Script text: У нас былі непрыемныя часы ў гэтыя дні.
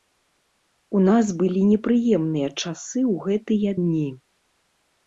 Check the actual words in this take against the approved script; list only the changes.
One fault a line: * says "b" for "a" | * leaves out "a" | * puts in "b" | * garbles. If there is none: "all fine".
all fine